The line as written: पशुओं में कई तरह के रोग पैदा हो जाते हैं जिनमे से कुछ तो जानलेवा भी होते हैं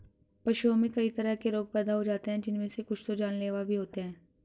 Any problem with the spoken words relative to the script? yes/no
no